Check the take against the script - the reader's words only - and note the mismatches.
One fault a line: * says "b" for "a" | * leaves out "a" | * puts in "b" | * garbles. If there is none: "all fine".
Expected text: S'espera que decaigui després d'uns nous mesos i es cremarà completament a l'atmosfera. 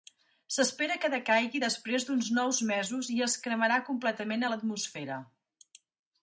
all fine